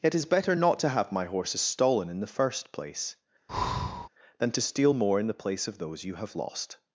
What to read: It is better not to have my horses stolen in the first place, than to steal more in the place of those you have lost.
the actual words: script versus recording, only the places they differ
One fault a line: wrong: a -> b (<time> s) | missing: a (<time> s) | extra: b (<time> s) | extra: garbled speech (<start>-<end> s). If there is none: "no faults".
no faults